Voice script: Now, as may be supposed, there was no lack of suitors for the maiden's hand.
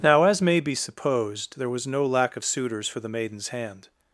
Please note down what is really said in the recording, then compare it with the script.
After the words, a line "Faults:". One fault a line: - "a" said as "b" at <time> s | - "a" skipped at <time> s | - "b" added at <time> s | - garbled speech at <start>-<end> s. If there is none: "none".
Now, as may be supposed, there was no lack of suitors for the maiden's hand.
Faults:
none